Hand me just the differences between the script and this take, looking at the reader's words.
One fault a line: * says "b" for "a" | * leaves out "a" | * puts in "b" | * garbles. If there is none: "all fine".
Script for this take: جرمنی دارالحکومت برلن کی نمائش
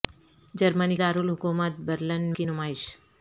all fine